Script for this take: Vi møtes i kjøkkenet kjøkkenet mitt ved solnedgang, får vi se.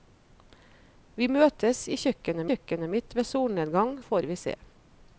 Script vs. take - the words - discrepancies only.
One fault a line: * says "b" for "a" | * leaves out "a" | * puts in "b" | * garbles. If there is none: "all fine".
all fine